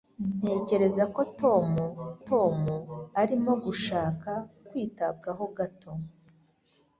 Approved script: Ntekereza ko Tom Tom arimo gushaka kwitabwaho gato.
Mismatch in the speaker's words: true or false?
false